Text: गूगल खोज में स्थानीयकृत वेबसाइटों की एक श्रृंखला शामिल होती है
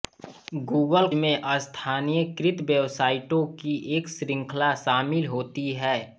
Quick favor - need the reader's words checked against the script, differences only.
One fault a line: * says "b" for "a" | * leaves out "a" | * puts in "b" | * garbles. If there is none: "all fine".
* leaves out "खोज"